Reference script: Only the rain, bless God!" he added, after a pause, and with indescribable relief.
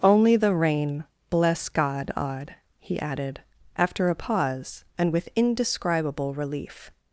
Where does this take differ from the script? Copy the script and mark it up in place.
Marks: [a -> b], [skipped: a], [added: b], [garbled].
Only the rain, bless God!" [added: odd] he added, after a pause, and with indescribable relief.